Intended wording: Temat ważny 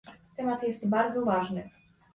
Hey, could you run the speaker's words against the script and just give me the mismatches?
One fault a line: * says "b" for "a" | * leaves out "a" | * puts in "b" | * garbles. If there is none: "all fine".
* puts in "jest bardzo"